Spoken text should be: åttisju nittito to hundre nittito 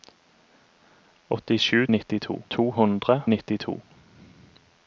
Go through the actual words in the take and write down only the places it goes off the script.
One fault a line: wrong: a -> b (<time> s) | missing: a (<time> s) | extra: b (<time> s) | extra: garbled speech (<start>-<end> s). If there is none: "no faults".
no faults